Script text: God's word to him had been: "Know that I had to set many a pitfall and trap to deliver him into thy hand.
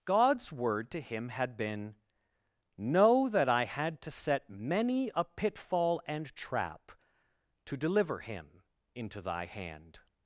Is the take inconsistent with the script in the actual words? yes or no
no